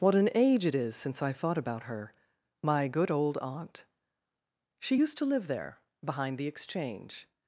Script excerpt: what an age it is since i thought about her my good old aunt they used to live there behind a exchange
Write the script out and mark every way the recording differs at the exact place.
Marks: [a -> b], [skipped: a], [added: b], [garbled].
what an age it is since i thought about her my good old aunt [they -> she] used to live there behind [a -> the] exchange